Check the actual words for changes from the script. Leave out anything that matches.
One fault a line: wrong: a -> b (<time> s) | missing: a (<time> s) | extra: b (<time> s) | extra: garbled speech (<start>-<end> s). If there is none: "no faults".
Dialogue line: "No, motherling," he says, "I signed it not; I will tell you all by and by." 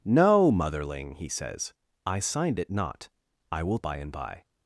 missing: tell you all (3.8 s)